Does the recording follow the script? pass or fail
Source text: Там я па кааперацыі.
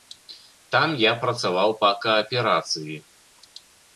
fail